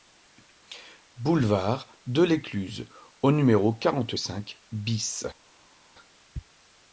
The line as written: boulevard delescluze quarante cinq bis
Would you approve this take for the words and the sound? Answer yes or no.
no